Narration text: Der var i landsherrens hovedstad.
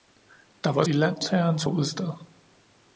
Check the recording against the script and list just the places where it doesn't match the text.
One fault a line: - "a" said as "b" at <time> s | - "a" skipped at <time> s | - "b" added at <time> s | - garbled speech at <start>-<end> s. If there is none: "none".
none